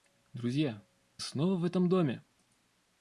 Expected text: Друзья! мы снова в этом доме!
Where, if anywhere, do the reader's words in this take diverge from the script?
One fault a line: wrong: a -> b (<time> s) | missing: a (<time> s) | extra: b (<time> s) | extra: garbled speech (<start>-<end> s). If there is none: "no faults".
missing: мы (0.8 s)